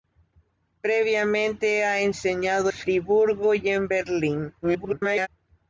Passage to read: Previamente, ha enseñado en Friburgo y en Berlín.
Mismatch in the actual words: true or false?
true